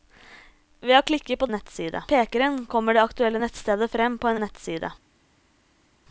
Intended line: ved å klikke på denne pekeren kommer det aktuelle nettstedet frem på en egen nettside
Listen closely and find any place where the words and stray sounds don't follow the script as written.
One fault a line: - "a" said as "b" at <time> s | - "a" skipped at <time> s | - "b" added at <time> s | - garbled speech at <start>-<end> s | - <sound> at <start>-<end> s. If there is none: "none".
- "denne" said as "nettside" at 1.5 s
- "egen" skipped at 4.4 s